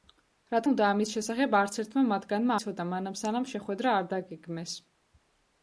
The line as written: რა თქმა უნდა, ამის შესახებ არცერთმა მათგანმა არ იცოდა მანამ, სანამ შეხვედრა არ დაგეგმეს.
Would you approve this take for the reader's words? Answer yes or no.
no